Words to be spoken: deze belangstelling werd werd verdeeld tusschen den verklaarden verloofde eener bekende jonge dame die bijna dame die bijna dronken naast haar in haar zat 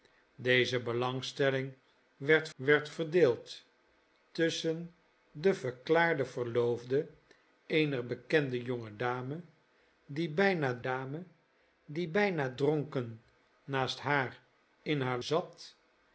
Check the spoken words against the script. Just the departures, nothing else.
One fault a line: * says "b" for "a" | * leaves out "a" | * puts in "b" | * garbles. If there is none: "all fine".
all fine